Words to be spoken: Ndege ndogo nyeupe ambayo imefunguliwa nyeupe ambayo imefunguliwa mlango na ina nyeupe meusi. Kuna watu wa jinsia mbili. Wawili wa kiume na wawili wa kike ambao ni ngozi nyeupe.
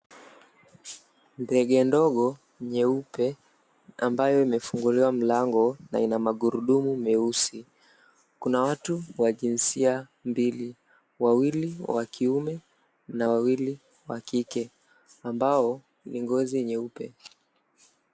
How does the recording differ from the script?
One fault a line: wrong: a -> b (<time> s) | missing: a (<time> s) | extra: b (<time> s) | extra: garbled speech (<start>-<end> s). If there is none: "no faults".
missing: nyeupe ambayo imefunguliwa (5.1 s)
wrong: nyeupe -> magurudumu (6.2 s)